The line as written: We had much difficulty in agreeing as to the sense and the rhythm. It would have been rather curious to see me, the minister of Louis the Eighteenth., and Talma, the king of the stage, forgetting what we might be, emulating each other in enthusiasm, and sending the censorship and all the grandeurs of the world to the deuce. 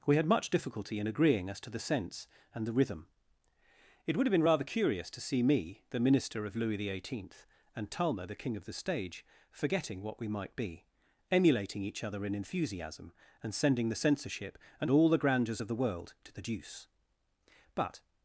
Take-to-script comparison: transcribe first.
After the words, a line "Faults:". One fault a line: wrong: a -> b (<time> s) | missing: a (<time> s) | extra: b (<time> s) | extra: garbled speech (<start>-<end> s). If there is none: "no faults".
We had much difficulty in agreeing as to the sense and the rhythm. It would have been rather curious to see me, the minister of Louis the Eighteenth., and Talma, the king of the stage, forgetting what we might be, emulating each other in enthusiasm, and sending the censorship and all the grandeurs of the world to the deuce. But
Faults:
extra: But (17.7 s)